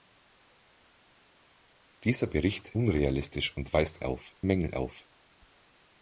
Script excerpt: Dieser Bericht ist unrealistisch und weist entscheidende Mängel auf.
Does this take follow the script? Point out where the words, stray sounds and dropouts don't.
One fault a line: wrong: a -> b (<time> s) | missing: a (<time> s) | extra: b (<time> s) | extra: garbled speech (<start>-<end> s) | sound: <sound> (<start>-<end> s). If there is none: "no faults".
missing: ist (2.7 s)
wrong: entscheidende -> auf (4.0 s)